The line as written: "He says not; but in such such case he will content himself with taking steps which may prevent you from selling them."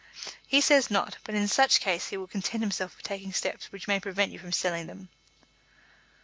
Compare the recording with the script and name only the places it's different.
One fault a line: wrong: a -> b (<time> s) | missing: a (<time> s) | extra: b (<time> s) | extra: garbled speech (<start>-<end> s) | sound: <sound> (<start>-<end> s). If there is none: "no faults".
missing: such (1.8 s)